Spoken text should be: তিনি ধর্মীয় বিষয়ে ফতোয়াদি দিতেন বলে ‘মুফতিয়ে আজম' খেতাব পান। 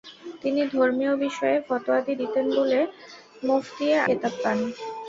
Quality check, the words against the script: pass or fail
fail